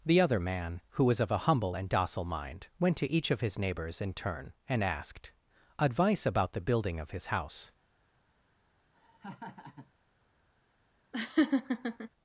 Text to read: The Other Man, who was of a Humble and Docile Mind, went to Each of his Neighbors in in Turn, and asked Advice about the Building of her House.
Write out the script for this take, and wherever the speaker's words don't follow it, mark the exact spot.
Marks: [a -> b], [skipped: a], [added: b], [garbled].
The Other Man, who was of a Humble and Docile Mind, went to Each of his Neighbors in [skipped: in] Turn, and asked Advice about the Building of [her -> his] House.